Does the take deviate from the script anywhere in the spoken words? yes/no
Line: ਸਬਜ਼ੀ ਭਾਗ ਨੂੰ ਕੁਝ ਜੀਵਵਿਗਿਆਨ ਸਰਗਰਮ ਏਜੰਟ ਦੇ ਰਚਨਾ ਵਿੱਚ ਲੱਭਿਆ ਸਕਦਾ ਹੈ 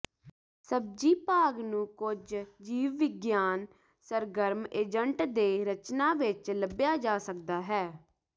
yes